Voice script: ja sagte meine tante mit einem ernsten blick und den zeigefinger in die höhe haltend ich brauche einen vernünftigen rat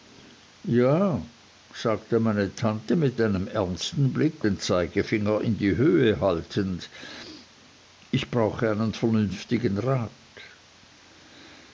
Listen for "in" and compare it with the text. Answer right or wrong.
right